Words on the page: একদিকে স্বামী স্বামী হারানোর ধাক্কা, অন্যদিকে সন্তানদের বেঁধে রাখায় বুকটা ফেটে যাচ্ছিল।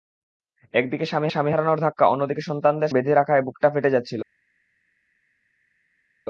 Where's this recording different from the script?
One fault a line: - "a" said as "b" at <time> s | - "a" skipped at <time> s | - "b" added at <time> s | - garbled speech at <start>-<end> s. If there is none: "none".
none